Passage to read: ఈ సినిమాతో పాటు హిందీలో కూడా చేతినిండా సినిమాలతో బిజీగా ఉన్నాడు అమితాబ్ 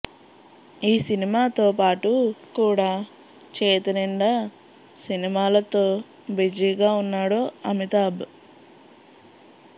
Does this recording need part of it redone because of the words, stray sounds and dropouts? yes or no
yes